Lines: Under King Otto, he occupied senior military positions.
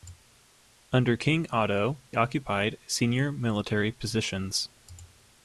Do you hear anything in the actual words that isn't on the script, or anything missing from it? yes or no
yes